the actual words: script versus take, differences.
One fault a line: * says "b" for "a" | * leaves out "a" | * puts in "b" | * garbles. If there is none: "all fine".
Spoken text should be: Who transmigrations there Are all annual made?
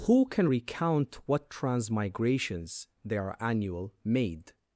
* puts in "can recount what"
* leaves out "all"